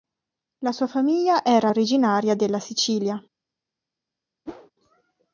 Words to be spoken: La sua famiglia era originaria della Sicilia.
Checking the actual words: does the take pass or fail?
pass